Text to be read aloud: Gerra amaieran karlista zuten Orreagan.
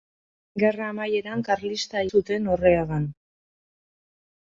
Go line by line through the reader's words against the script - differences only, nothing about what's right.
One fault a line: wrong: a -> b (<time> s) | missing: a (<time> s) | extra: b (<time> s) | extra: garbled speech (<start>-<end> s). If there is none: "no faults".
no faults